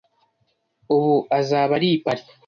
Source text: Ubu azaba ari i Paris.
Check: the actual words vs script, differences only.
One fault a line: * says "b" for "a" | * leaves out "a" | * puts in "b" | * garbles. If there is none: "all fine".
all fine